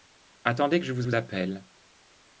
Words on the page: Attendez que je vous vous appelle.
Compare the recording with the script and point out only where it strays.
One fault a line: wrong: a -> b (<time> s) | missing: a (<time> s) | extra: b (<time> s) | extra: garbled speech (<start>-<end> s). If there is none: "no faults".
no faults